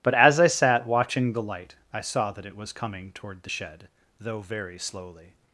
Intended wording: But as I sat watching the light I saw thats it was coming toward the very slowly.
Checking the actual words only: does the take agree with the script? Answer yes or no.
no